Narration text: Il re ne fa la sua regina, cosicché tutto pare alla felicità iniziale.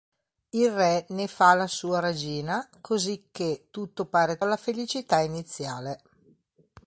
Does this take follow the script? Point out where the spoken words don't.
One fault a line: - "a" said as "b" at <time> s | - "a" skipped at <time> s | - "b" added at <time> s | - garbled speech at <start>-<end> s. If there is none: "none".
none